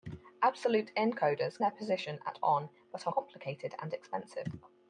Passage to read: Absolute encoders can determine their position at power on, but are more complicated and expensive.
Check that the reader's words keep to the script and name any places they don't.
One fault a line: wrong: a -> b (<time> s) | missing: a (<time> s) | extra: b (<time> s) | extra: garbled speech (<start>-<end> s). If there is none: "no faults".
missing: can determine (1.6 s)
missing: power (2.4 s)
missing: more (3.1 s)